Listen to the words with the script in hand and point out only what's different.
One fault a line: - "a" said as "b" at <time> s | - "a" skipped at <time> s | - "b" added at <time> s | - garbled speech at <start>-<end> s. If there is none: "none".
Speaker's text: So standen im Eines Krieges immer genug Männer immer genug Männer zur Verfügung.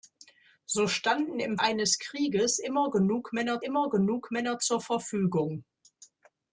none